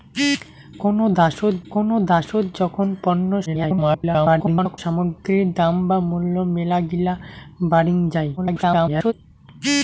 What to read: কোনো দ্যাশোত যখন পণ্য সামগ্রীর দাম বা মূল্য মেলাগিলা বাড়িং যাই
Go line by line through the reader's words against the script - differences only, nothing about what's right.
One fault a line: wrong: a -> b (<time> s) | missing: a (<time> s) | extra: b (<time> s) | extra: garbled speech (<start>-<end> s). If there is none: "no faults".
extra: কোনো দ্যাশোত (1.7 s)
extra: garbled speech (3.5-4.8 s)
extra: garbled speech (8.4-9.1 s)